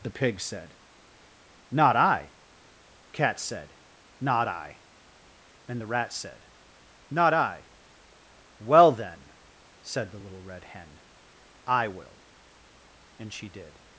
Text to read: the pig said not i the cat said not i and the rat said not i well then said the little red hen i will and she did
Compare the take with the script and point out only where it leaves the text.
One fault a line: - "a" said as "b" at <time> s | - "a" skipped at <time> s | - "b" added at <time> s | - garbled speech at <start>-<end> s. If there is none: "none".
- "the" skipped at 2.3 s